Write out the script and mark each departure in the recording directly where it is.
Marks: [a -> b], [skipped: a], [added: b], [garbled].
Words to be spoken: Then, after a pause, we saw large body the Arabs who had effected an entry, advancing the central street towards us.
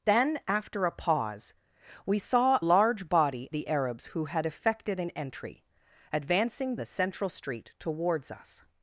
Then, after a pause, we saw large body the Arabs who had effected an entry, advancing the central street towards us.